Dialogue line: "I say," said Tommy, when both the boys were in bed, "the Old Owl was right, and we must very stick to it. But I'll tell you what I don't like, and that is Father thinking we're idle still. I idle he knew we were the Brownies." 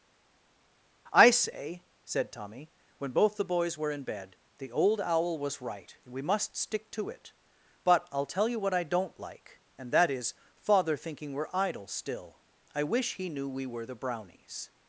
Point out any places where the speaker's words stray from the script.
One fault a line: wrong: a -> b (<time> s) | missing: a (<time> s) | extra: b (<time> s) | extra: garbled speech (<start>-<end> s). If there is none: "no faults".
missing: very (6.6 s)
wrong: idle -> wish (12.8 s)